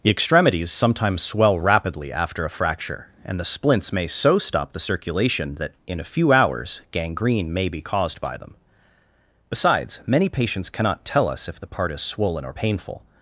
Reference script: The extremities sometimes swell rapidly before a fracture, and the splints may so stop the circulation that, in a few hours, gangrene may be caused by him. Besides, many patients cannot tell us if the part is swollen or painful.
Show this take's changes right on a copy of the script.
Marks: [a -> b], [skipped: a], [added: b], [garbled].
The extremities sometimes swell rapidly [before -> after] a fracture, and the splints may so stop the circulation that, in a few hours, gangrene may be caused by [him. -> them] Besides, many patients cannot tell us if the part is swollen or painful.